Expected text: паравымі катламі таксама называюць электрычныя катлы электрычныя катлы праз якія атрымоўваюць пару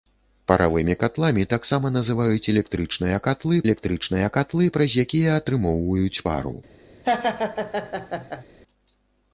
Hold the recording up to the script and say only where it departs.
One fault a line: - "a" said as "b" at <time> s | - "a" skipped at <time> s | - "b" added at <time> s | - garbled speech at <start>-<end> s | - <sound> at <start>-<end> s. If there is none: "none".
- laugh at 7.0-8.4 s